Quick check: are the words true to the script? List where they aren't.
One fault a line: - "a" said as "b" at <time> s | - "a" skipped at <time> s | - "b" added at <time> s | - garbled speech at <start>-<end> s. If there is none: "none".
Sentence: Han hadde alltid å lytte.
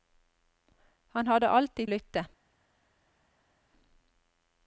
none